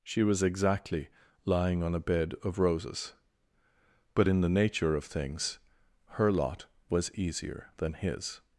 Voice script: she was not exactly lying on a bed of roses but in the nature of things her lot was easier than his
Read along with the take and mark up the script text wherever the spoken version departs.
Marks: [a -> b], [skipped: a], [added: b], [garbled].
she was [skipped: not] exactly lying on a bed of roses but in the nature of things her lot was easier than his